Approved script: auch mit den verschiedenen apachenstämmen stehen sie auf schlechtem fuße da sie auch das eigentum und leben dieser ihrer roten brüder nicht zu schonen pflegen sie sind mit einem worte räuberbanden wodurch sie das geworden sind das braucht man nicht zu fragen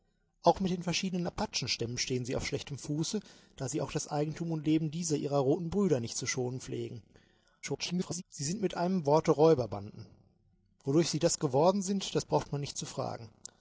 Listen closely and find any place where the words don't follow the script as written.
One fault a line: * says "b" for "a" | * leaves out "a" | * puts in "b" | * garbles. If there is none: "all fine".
* garbles